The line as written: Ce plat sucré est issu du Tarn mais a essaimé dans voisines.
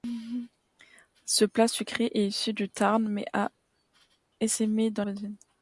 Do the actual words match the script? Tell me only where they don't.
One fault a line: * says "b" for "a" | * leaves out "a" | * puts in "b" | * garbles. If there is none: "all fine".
all fine